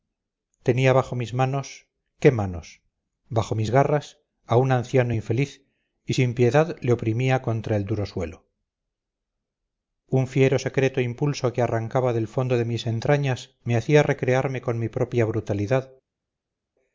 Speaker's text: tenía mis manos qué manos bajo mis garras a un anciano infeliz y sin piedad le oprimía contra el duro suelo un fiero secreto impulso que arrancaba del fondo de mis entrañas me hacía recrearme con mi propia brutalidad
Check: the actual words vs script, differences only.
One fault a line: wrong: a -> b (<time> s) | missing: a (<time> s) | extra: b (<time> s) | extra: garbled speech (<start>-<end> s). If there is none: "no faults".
extra: bajo (0.9 s)